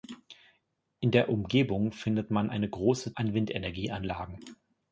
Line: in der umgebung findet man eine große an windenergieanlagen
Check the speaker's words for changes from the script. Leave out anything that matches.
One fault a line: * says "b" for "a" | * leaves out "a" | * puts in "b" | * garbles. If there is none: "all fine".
all fine